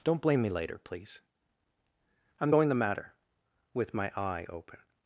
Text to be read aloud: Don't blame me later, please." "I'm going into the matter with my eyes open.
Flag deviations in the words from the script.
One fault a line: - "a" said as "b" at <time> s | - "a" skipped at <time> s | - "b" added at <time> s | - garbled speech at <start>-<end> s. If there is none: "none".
- "into" skipped at 2.7 s
- "eyes" said as "eye" at 4.2 s